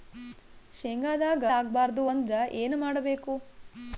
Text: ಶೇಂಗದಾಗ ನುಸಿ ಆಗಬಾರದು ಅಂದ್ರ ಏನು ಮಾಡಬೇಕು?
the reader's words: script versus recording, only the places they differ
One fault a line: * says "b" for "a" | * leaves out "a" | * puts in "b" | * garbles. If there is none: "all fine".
* leaves out "ನುಸಿ"